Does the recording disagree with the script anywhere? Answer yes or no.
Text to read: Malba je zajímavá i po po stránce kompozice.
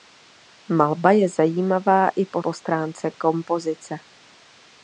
no